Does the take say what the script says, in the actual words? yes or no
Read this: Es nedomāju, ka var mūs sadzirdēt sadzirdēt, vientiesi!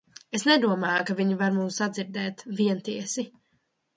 no